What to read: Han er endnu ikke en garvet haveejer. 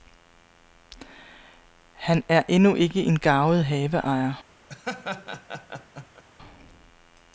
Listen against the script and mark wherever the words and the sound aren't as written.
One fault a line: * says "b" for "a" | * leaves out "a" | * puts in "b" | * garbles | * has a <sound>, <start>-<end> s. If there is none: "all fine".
* has a laugh, 4.7-6.2 s